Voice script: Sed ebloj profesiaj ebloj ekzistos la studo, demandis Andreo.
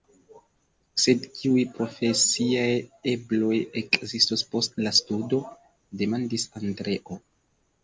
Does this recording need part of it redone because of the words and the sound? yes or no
yes